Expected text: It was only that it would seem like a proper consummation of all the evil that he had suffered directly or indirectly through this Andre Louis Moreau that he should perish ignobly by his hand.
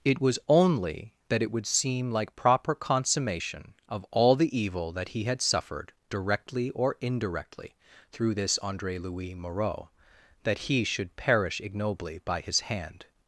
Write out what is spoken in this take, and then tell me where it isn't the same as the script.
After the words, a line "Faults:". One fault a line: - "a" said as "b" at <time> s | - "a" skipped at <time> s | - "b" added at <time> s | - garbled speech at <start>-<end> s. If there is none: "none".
It was only that it would seem like proper consummation of all the evil that he had suffered directly or indirectly through this Andre Louis Moreau that he should perish ignobly by his hand.
Faults:
- "a" skipped at 2.4 s